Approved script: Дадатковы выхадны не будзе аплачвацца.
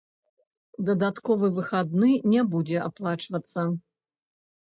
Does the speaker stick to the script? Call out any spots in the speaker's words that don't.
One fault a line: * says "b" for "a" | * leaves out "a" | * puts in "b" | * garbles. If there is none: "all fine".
all fine